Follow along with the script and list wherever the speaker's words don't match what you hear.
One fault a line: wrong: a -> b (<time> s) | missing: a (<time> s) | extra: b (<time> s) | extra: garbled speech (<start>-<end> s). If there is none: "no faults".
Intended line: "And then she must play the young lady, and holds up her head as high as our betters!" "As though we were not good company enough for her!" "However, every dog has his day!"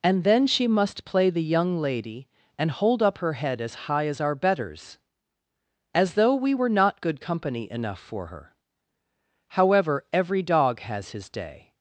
wrong: holds -> hold (2.7 s)